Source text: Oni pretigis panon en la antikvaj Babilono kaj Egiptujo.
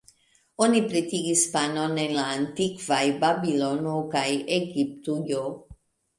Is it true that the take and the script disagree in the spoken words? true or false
false